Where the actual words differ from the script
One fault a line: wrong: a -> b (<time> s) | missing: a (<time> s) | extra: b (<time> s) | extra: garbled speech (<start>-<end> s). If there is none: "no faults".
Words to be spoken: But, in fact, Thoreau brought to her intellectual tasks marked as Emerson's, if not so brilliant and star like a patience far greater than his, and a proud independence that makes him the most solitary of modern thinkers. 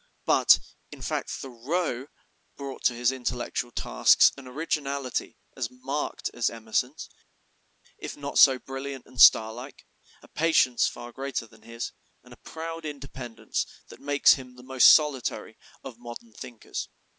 wrong: her -> his (3.0 s)
extra: an originality as (4.4 s)